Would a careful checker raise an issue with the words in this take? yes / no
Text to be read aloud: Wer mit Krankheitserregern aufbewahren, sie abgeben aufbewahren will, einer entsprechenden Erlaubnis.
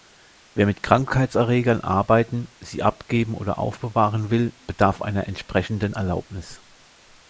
yes